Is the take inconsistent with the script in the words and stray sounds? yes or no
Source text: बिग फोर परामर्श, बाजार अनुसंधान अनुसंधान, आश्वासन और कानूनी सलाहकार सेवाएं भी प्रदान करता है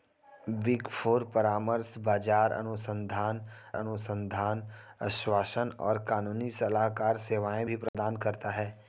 yes